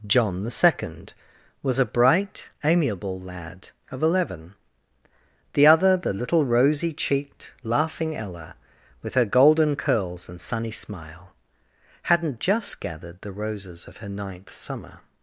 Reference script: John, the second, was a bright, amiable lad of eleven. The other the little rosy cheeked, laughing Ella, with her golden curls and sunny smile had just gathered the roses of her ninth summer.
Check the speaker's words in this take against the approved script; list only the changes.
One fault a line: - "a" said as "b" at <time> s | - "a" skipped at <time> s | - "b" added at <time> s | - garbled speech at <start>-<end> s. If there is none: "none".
- "had" said as "hadn't" at 12.0 s